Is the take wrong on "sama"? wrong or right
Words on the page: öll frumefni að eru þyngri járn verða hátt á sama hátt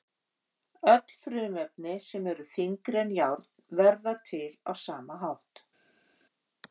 right